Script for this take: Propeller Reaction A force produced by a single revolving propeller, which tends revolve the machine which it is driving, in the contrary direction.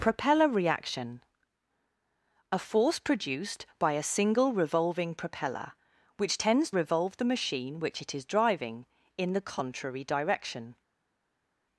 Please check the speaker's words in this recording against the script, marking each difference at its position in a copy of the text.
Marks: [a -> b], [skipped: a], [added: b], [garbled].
Propeller Reaction A force produced by a single revolving propeller, which tends revolve the machine which it is driving, in the contrary direction.